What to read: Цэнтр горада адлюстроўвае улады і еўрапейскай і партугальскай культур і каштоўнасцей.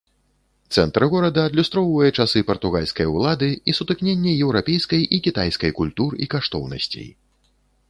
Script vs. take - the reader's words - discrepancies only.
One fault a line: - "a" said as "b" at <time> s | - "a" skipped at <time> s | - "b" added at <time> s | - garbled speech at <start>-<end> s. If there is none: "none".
- "часы партугальскай" added at 2.2 s
- "сутыкненне" added at 3.8 s
- "партугальскай" said as "кітайскай" at 5.3 s